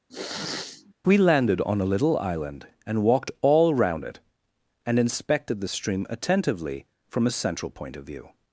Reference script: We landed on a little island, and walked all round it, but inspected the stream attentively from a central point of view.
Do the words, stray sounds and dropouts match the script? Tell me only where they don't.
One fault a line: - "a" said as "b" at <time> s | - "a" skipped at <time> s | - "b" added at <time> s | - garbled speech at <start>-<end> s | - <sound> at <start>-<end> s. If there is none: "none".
- sniff at 0.1-0.9 s
- "but" said as "and" at 4.9 s